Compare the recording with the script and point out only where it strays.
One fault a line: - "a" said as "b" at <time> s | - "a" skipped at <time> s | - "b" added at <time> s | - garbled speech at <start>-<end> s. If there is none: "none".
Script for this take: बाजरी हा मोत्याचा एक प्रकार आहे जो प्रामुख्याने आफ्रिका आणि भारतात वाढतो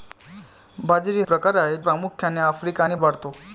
- "हा मोत्याचा एक" skipped at 1.2 s
- "जो" skipped at 1.8 s
- "भारतात" skipped at 2.9 s